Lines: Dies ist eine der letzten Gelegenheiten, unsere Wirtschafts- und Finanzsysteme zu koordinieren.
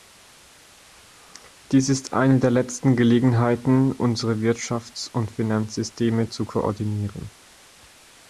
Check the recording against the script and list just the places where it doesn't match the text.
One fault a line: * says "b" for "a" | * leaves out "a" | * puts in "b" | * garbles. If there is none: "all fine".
all fine